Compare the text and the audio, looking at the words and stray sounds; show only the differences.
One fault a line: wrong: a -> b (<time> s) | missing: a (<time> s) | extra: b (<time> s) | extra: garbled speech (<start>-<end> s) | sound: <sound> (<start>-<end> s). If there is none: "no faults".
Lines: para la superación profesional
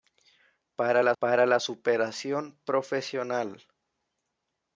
extra: para la (1.2 s)